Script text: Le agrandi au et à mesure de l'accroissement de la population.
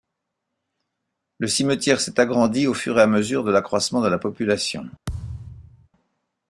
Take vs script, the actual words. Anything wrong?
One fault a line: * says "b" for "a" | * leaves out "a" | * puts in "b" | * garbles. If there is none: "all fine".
* puts in "cimetière s'est"
* puts in "fur"